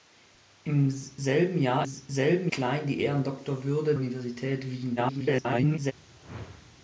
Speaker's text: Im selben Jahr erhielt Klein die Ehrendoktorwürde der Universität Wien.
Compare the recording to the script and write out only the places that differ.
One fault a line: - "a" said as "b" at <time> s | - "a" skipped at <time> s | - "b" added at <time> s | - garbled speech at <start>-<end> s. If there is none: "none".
- "erhielt" said as "selben" at 1.8 s
- "der" skipped at 3.9 s
- garbled speech at 5.0-5.9 s